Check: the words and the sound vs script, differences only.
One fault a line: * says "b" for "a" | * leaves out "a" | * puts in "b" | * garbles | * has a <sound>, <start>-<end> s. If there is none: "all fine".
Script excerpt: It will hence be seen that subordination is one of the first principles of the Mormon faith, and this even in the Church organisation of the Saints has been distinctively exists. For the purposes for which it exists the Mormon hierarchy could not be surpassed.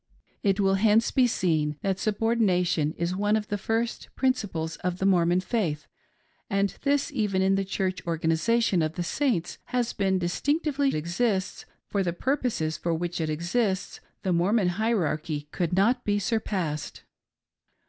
all fine